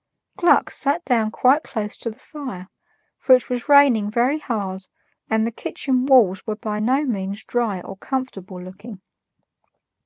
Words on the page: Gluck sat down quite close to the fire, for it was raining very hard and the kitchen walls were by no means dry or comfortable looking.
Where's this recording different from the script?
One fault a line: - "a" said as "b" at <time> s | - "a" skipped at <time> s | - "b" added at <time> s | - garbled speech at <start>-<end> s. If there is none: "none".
none